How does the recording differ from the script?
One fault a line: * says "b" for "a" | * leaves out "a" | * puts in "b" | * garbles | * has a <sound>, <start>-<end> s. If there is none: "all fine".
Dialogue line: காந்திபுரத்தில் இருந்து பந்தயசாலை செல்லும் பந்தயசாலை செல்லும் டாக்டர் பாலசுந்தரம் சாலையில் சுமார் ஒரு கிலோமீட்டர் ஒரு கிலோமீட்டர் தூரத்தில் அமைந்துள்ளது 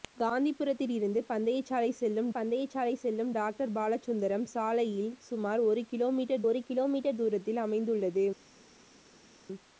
all fine